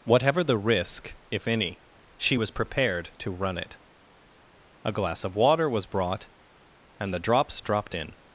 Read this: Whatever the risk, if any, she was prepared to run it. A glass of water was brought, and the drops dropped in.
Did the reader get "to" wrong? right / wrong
right